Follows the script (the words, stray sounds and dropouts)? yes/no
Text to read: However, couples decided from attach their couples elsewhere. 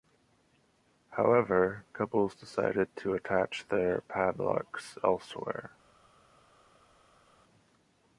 no